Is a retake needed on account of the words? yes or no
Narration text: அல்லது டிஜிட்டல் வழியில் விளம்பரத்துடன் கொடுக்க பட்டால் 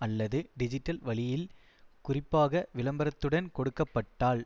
yes